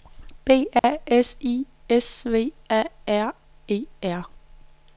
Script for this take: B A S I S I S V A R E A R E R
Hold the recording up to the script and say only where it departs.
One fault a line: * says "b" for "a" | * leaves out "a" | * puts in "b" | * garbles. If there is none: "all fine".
* leaves out "I S"
* leaves out "A R E"